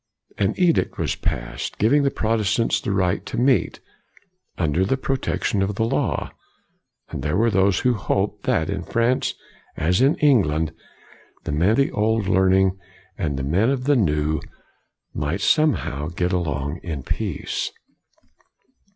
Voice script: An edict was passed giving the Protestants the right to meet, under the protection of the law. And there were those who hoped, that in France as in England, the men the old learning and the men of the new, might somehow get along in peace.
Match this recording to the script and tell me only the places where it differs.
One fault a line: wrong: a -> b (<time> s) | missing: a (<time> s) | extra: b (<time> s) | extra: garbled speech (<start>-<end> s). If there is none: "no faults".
no faults